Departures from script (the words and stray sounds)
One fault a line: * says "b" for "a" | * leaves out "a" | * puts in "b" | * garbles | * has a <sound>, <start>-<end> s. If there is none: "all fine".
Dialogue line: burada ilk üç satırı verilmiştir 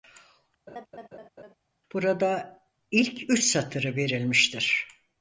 * has a laugh, 0.7-1.5 s